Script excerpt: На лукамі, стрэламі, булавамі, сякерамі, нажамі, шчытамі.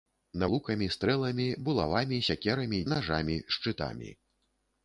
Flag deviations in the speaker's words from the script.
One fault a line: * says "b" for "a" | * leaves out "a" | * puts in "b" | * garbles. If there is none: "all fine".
all fine